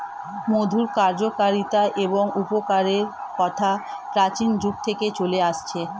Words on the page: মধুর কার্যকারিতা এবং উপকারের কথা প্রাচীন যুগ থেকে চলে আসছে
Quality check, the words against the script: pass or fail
pass